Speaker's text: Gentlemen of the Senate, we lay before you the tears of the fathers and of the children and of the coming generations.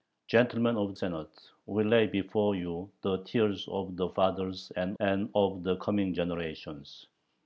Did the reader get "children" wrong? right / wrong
wrong